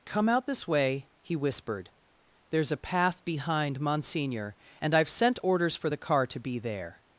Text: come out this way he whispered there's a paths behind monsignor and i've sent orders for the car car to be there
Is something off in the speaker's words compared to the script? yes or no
yes